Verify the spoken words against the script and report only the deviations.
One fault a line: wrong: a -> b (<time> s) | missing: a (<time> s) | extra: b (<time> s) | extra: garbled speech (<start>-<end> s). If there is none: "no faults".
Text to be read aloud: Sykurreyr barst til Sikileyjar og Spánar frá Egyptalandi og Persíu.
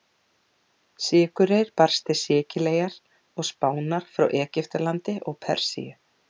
no faults